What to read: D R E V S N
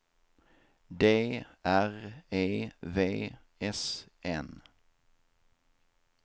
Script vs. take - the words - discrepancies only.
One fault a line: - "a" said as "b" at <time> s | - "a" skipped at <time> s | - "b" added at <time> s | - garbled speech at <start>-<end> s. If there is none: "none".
none